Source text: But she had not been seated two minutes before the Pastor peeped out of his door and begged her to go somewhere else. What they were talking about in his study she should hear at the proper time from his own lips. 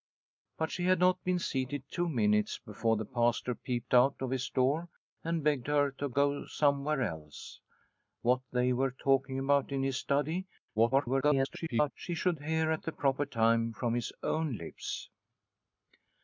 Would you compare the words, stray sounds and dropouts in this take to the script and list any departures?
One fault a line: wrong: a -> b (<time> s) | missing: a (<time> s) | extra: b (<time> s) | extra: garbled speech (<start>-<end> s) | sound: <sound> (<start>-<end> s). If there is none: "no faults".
extra: garbled speech (10.7-11.9 s)